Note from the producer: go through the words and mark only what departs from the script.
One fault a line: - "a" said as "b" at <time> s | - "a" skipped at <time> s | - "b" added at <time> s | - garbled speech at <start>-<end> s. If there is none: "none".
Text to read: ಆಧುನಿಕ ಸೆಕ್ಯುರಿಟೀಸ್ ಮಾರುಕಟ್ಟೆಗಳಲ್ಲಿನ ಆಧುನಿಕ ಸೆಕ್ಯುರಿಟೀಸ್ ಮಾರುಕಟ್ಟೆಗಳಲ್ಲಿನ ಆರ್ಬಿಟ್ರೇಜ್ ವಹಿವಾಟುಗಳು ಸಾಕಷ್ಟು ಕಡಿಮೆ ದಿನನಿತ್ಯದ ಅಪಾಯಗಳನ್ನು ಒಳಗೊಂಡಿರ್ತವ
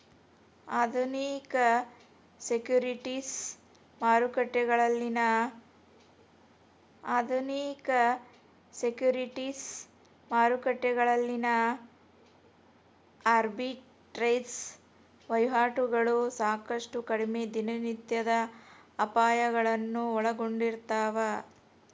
none